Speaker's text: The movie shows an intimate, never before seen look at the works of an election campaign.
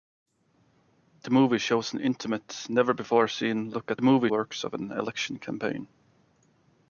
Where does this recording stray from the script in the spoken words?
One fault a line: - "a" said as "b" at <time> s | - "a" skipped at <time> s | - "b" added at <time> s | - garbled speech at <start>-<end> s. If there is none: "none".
- "the" said as "movie" at 4.0 s